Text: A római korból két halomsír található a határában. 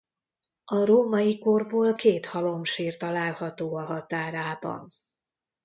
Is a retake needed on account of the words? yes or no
no